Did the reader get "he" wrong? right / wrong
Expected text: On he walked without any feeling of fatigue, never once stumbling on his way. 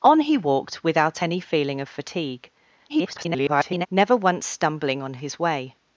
right